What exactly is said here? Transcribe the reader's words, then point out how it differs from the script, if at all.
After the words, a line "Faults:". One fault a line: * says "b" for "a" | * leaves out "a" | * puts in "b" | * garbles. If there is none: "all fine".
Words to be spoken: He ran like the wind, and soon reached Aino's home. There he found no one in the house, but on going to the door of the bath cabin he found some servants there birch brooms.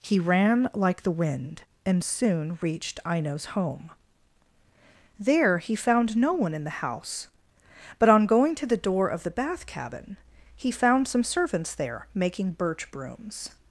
He ran like the wind, and soon reached Aino's home. There he found no one in the house, but on going to the door of the bath cabin he found some servants there making birch brooms.
Faults:
* puts in "making"